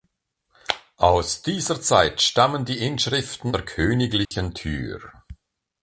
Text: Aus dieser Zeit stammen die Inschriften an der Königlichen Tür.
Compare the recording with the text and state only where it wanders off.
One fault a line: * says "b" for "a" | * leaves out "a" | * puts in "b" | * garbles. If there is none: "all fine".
* leaves out "an"